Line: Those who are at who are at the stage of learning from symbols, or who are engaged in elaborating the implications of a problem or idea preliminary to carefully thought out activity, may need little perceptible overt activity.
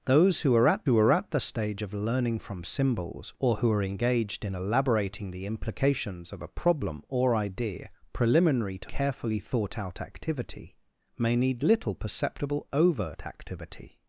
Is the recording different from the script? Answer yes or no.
no